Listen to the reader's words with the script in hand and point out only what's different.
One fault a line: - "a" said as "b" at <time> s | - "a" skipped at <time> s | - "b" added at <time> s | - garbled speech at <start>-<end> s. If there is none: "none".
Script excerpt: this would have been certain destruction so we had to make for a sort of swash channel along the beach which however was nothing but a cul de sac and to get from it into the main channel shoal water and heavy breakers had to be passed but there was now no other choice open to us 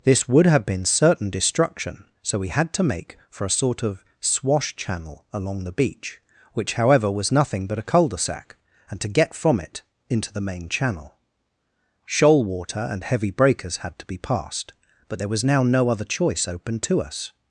none